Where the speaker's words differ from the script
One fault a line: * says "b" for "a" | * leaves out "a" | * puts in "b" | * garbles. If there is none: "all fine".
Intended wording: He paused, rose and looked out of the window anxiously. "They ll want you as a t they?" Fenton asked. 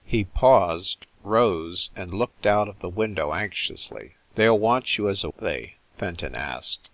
all fine